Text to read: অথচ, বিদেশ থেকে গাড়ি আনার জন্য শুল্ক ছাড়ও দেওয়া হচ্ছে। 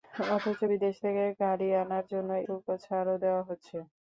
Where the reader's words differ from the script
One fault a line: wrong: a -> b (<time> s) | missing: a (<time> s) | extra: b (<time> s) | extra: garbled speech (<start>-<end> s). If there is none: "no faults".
no faults